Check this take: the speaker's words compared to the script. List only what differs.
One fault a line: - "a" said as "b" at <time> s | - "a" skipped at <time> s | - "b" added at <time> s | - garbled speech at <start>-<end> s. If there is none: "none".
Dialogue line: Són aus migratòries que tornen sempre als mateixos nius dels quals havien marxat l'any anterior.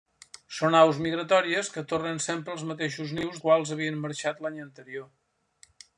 - "dels" skipped at 3.4 s